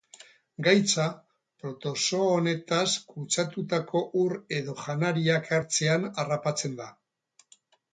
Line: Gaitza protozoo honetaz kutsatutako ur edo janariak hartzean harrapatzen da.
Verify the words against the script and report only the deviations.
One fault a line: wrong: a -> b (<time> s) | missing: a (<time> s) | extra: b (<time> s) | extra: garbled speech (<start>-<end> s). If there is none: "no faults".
no faults